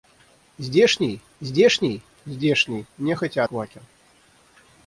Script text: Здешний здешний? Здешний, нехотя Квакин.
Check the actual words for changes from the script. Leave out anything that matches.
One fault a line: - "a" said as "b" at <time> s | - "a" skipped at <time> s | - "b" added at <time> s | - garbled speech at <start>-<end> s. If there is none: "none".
none